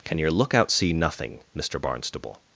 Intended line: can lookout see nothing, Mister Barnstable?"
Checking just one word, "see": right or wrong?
right